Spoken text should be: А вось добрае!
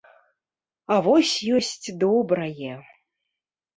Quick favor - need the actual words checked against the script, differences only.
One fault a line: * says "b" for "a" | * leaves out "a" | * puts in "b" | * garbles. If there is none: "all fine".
* puts in "ёсць"